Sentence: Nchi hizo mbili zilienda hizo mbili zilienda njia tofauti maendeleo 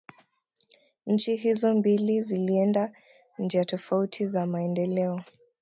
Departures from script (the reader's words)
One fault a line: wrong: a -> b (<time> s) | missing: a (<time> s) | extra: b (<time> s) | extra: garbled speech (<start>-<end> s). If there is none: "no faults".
missing: hizo mbili zilienda (2.9 s)
extra: za (4.2 s)